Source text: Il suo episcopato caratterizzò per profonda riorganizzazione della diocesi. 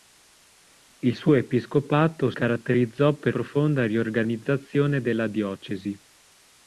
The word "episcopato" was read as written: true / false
true